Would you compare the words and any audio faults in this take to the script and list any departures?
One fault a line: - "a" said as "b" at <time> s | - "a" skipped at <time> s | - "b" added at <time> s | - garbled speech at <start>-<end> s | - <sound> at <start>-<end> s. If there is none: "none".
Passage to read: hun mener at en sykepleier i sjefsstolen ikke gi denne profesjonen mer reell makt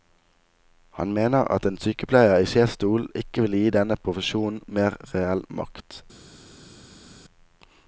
- "hun" said as "han" at 1.0 s
- "vil" added at 3.5 s